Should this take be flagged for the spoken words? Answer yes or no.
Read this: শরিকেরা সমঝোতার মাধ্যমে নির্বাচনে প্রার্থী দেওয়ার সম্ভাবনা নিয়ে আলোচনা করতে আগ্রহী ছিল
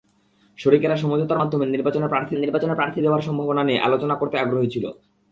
yes